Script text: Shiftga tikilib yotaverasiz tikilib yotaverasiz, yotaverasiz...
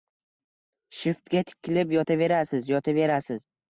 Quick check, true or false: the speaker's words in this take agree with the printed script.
false